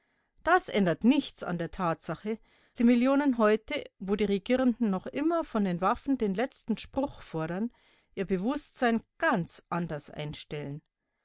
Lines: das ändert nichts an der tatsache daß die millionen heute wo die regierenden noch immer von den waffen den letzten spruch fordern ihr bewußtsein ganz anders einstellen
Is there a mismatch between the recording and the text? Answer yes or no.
yes